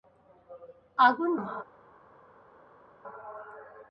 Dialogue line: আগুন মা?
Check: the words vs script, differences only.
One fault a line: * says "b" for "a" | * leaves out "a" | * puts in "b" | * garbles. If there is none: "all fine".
all fine